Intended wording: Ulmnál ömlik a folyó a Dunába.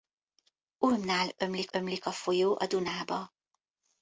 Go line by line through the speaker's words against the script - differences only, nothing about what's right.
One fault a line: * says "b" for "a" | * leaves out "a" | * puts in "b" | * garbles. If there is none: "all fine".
* puts in "ömlik"